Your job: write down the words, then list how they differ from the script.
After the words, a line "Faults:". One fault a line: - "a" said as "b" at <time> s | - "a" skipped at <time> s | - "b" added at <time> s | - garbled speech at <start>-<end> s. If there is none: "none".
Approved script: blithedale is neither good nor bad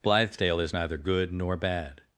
blithedale is neither good nor bad
Faults:
none